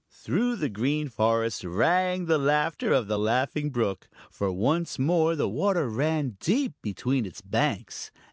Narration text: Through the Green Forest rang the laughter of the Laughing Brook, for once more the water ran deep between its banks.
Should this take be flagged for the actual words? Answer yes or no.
no